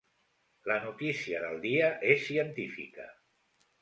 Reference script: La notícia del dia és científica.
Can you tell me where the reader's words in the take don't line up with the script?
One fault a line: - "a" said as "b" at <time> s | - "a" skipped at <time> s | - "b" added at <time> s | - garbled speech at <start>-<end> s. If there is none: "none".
none